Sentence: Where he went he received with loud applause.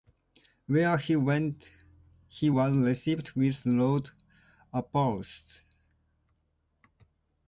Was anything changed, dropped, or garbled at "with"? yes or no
no